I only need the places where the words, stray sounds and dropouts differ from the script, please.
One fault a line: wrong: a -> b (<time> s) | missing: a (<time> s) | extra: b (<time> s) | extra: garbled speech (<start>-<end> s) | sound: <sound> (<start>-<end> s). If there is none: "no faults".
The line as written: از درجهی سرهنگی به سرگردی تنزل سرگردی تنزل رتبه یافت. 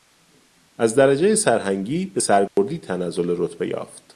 sound: dropout (2.5-2.6 s)
missing: سرگردی تنزل (3.4 s)